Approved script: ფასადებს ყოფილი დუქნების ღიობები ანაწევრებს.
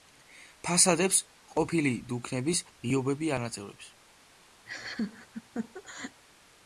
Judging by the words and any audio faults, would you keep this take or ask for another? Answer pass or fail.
fail